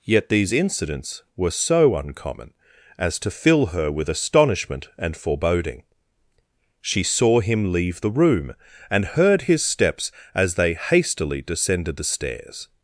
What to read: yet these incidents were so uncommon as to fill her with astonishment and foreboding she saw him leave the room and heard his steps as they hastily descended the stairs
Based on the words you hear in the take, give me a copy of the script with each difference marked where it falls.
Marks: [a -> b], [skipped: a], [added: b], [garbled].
yet these incidents were so uncommon as to fill her with astonishment and foreboding she saw him leave the room and heard his steps as they hastily descended the stairs